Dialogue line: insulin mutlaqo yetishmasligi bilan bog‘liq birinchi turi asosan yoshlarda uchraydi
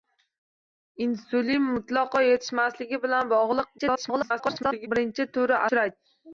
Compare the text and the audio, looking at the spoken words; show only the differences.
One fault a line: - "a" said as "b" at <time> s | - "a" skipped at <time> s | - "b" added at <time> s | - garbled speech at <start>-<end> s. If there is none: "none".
- garbled speech at 3.8-4.9 s
- "asosan yoshlarda" skipped at 5.6 s